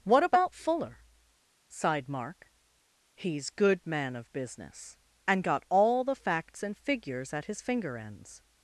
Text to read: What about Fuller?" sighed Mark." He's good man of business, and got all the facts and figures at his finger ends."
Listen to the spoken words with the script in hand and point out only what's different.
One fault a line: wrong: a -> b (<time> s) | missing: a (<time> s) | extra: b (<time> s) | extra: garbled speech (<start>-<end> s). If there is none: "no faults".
no faults